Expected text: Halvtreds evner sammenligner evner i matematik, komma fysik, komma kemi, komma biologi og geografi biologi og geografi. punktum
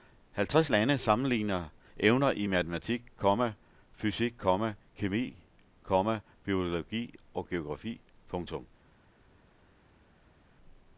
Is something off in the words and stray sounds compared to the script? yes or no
yes